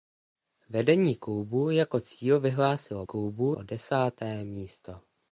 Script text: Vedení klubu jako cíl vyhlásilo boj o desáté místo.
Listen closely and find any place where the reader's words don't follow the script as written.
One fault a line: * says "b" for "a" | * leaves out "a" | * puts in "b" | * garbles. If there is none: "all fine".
* says "klubu" for "boj"